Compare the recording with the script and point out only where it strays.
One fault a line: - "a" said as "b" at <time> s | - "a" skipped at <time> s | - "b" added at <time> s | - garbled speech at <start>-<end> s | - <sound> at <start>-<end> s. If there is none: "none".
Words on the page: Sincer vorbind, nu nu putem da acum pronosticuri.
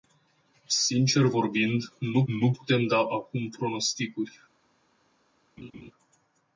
- laugh at 5.6-5.9 s